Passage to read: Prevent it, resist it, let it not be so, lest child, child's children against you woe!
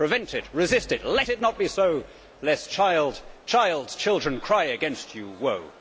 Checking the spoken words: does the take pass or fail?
fail